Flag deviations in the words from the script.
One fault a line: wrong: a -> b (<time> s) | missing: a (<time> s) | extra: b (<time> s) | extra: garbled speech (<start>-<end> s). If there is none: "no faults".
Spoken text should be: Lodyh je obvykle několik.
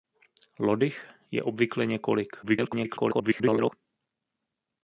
extra: garbled speech (2.4-3.7 s)